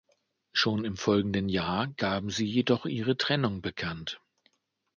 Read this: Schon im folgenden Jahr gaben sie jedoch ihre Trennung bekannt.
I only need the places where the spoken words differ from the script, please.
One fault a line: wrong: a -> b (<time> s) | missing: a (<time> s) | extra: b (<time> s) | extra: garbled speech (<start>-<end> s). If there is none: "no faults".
no faults